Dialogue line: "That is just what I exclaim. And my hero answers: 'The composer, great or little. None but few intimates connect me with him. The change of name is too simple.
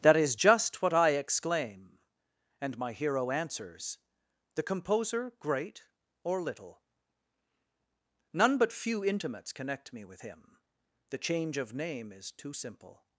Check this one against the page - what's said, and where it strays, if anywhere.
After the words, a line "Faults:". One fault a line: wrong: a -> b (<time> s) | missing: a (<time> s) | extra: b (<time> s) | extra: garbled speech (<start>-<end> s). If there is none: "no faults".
"That is just what I exclaim. And my hero answers: 'The composer, great or little. None but few intimates connect me with him. The change of name is too simple.
Faults:
no faults